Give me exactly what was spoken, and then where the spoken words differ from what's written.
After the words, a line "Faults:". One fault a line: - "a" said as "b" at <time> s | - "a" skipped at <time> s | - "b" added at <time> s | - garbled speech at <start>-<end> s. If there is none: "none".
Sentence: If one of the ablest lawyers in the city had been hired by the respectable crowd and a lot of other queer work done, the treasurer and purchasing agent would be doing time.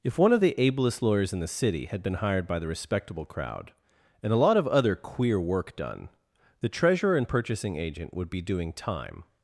If one of the ablest lawyers in the city had been hired by the respectable crowd and a lot of other queer work done, the treasurer and purchasing agent would be doing time.
Faults:
none